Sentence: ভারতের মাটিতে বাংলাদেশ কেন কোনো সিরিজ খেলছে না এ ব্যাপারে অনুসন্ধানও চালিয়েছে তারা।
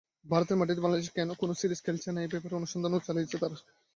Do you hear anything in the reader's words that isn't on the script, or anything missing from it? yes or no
no